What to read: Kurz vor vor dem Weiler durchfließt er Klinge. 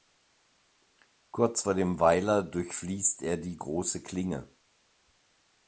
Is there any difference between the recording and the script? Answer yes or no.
yes